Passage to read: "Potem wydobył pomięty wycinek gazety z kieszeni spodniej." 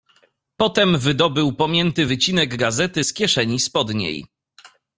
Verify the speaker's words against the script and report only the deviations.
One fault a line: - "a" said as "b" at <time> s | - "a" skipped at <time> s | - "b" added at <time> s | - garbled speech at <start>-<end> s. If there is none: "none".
none